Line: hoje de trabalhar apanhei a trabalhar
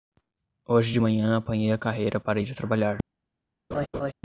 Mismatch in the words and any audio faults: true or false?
true